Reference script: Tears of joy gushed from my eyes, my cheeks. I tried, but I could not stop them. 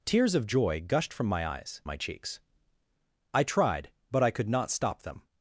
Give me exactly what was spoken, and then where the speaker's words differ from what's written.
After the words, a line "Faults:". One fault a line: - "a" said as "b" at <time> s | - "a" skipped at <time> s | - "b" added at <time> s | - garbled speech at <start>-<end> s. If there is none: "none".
Tears of joy gushed from my eyes, my cheeks. I tried, but I could not stop them.
Faults:
none